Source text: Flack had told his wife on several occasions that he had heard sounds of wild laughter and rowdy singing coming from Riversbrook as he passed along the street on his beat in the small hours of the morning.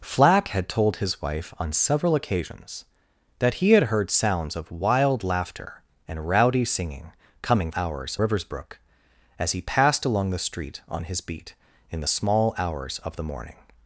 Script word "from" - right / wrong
wrong